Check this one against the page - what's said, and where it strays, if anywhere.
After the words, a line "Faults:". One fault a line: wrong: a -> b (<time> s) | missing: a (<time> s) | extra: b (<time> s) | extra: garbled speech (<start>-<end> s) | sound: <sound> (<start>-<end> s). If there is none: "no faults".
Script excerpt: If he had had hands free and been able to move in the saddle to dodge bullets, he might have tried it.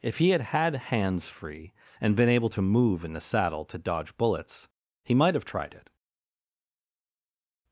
If he had had hands free and been able to move in the saddle to dodge bullets, he might have tried it.
Faults:
no faults